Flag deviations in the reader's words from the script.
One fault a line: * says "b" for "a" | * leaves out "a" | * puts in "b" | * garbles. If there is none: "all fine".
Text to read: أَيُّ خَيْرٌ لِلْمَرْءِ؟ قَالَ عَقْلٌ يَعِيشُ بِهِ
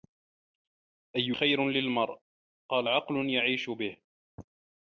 all fine